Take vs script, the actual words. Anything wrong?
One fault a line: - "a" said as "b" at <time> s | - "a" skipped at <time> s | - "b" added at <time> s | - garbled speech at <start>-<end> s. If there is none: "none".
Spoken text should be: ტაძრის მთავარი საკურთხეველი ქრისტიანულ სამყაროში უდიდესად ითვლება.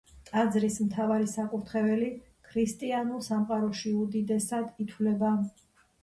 none